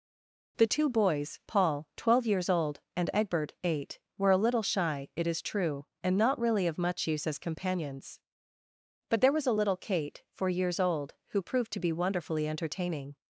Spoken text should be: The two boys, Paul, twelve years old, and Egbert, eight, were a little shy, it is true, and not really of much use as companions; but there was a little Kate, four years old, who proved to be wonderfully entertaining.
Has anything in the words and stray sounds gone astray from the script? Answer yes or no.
no